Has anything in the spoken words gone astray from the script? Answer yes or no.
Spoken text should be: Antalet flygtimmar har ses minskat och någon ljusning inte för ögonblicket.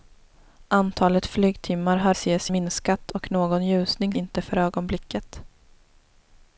no